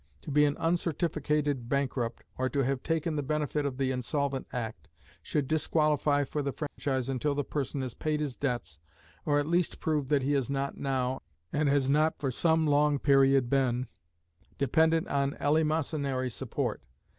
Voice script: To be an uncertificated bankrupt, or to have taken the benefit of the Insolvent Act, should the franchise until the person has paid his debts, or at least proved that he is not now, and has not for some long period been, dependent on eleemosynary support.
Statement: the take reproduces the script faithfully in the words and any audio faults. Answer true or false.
false